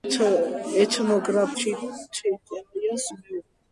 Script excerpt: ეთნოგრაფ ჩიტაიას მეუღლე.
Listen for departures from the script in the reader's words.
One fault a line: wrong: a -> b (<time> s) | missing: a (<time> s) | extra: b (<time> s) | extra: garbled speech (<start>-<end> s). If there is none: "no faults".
no faults